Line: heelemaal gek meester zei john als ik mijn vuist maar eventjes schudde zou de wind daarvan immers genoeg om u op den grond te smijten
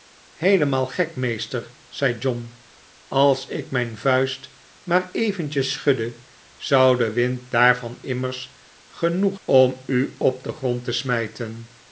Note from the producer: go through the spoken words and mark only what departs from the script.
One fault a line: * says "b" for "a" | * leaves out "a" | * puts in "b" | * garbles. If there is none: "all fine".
all fine